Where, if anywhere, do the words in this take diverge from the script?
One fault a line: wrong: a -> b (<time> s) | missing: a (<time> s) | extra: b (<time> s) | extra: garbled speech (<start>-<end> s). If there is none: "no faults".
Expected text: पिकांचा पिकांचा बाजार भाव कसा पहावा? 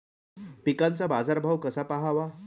missing: पिकांचा (1.1 s)